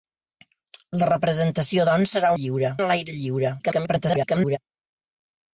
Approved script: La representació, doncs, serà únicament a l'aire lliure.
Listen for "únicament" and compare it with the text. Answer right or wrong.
wrong